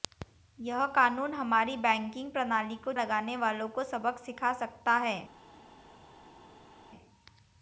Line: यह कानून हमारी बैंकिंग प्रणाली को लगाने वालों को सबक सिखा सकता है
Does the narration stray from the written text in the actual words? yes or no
no